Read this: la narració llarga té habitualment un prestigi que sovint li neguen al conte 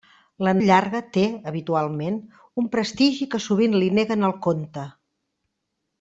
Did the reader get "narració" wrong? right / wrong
wrong